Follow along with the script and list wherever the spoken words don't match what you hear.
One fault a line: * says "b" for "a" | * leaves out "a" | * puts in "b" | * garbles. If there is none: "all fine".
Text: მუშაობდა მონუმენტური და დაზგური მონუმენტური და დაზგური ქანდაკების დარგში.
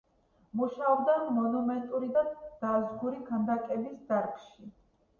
* leaves out "მონუმენტური და დაზგური"